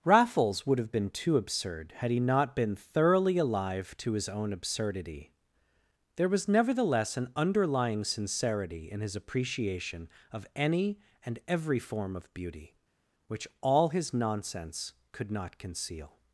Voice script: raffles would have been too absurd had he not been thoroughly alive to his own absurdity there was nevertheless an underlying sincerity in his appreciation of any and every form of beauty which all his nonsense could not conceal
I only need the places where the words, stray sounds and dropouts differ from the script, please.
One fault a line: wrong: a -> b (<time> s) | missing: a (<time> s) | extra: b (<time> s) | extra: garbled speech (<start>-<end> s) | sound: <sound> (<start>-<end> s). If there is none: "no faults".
no faults